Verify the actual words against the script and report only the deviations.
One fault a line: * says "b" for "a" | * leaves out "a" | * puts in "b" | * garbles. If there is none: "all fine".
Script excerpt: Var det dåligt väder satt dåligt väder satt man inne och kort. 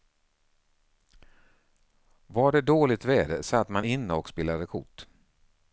* leaves out "dåligt väder satt"
* puts in "spelade"